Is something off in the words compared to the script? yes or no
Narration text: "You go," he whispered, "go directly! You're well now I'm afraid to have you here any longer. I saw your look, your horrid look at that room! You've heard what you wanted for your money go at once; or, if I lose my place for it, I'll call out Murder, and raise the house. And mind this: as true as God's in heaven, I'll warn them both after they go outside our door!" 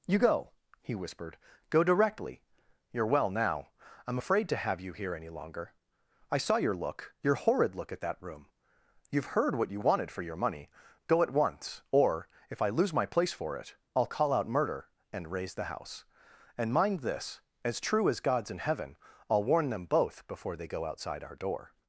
yes